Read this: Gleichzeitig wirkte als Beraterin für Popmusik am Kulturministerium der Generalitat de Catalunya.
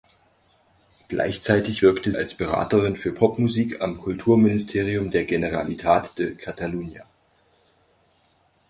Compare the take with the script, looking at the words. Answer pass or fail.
pass